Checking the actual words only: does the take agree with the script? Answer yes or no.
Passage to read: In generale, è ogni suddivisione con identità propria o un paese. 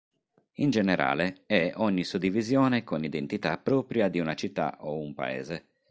no